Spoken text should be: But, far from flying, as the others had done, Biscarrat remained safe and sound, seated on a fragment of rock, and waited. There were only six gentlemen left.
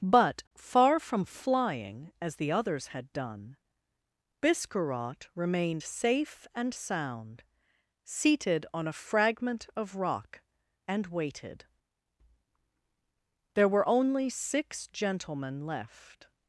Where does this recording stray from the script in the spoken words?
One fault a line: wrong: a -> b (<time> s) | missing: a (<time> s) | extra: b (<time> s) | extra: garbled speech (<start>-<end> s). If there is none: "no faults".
no faults